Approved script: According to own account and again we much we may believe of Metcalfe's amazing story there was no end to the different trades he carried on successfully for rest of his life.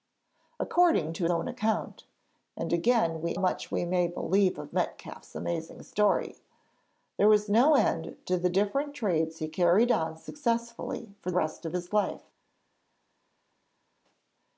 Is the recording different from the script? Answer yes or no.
no